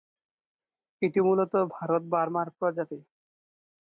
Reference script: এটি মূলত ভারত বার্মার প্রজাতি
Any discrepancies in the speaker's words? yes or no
no